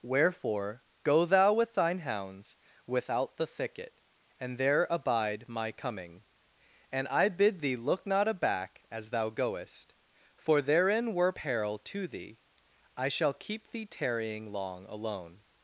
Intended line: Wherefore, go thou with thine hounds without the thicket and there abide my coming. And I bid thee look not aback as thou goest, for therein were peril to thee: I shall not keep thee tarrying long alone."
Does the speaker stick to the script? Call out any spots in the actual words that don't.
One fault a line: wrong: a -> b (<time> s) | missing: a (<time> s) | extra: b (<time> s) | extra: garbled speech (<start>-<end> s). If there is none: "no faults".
missing: not (13.3 s)